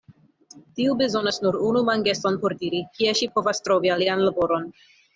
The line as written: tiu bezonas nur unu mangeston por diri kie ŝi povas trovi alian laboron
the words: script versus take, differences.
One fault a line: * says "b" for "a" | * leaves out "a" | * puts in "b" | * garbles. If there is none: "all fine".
all fine